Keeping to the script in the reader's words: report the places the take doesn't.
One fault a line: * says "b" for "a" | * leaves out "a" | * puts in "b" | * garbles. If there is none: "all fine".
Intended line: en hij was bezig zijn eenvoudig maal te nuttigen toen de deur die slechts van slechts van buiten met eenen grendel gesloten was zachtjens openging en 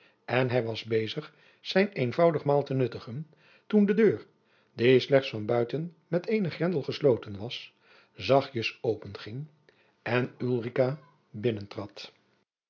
* leaves out "slechts van"